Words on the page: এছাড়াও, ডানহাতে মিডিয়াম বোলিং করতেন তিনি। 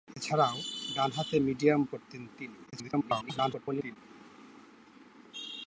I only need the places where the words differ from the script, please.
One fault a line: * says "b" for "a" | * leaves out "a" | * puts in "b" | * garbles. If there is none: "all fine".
* leaves out "বোলিং"
* garbles